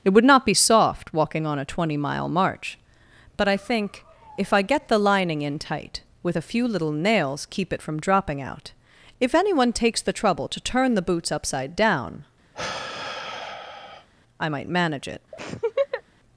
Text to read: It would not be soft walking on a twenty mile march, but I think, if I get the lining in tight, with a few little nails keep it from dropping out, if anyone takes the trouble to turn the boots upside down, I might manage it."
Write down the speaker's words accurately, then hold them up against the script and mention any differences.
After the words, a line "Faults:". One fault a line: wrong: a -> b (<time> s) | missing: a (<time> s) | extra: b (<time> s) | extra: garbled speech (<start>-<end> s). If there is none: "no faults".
It would not be soft walking on a twenty mile march, but I think, if I get the lining in tight, with a few little nails keep it from dropping out, if anyone takes the trouble to turn the boots upside down, I might manage it."
Faults:
no faults